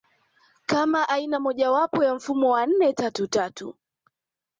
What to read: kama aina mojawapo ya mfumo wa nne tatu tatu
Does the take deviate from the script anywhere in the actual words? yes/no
no